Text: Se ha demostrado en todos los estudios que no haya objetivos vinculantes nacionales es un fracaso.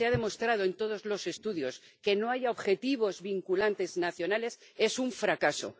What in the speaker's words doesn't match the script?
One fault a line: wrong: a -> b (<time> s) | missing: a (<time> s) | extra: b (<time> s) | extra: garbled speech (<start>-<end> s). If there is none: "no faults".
no faults